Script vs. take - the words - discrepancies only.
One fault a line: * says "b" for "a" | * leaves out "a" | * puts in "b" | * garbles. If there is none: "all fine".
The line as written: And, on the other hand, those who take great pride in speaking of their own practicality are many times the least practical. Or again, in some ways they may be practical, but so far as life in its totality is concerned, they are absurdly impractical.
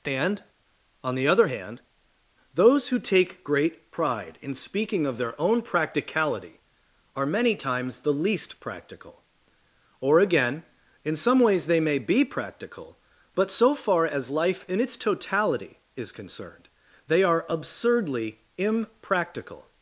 all fine